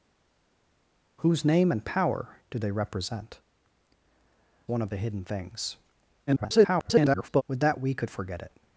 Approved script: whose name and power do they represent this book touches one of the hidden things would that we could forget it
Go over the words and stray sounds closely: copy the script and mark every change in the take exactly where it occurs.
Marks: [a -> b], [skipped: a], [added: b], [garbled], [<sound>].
whose name and power do they represent [skipped: this book touches] one of the hidden things [garbled] would that we could forget it